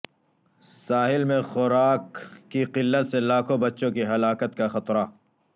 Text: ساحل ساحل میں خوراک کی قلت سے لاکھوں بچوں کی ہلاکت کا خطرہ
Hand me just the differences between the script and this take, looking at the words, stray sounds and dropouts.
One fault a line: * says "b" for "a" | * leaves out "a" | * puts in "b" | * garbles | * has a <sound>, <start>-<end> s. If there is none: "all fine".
* leaves out "ساحل"